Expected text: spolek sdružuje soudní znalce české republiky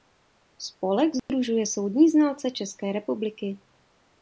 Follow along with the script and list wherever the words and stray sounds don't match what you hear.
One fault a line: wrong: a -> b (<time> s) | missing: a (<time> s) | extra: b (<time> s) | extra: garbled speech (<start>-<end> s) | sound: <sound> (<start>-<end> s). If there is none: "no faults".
sound: dropout (1.2-1.3 s)